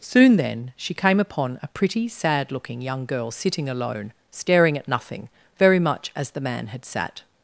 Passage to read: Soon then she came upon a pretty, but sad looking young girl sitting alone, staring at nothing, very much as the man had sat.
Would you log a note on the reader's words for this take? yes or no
yes